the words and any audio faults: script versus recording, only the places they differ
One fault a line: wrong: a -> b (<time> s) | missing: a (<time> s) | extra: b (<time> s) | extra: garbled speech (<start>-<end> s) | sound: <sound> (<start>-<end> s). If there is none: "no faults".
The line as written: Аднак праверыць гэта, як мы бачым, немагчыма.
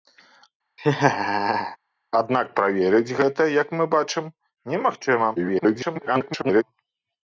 sound: laugh (0.8-1.8 s)
extra: garbled speech (5.4-6.6 s)